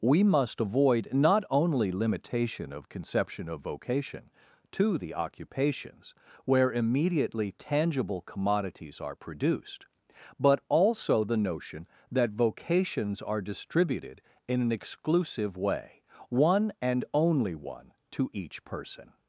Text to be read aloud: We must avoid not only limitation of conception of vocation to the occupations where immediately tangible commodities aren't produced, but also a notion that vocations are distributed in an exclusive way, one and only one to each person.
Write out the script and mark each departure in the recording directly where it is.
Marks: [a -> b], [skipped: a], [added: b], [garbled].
We must avoid not only limitation of conception of vocation to the occupations where immediately tangible commodities [aren't -> are] produced, but also [a -> the] notion that vocations are distributed in an exclusive way, one and only one to each person.